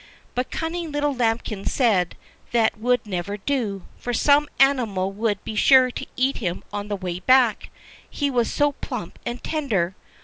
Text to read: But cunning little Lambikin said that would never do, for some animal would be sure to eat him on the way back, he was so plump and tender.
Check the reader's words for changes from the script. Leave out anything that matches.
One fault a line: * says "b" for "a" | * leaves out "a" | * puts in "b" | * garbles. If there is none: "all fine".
all fine